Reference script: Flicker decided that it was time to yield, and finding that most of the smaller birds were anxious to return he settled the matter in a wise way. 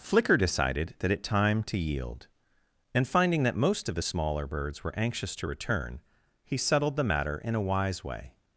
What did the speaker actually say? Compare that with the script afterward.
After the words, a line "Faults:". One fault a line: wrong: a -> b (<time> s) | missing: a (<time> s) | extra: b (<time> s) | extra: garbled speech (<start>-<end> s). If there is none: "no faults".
Flicker decided that it time to yield, and finding that most of the smaller birds were anxious to return he settled the matter in a wise way.
Faults:
missing: was (1.2 s)